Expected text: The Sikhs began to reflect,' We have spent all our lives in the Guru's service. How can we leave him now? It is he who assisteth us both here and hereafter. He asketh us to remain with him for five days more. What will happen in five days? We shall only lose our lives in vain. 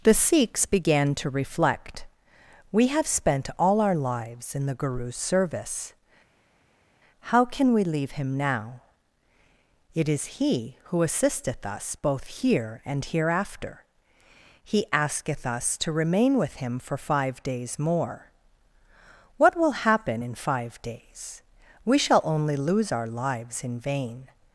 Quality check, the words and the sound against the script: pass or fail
pass